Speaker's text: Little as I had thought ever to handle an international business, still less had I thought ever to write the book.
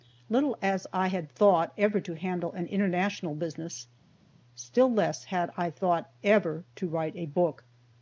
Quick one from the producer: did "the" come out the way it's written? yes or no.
no